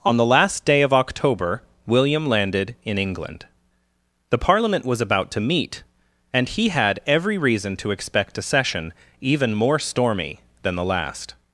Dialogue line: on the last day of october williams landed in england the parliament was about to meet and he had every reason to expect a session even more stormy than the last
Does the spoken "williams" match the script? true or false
false